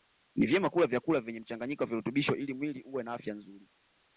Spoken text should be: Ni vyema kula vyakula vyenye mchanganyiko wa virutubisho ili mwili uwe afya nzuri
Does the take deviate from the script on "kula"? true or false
false